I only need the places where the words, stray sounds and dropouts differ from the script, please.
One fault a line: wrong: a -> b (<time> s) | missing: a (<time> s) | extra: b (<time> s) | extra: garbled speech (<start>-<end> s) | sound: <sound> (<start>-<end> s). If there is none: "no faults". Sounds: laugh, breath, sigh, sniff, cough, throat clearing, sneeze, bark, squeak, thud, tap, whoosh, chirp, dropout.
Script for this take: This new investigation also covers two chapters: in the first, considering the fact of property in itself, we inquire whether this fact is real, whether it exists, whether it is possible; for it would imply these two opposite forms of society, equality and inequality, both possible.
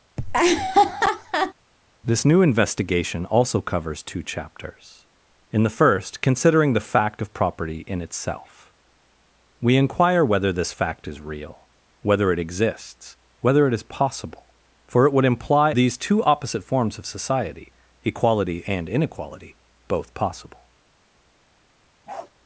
sound: laugh (0.2-1.5 s)
sound: bark (22.1-22.3 s)